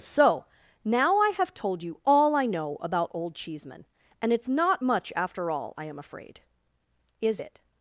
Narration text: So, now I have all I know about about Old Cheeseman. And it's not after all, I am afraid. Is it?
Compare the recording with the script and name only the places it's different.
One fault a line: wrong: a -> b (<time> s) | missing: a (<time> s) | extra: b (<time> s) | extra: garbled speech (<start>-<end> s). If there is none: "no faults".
extra: told you (1.5 s)
missing: about (3.1 s)
extra: much (4.8 s)